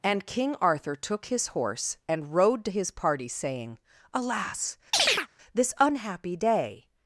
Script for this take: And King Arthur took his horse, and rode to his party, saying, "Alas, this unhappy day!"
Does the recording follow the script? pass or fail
pass